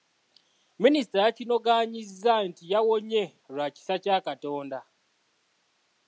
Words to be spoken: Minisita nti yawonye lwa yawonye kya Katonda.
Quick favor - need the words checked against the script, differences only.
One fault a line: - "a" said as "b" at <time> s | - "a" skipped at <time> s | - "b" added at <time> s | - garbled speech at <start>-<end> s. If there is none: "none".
- "yakinogaanyizza" added at 1.2 s
- "yawonye" said as "kisa" at 3.8 s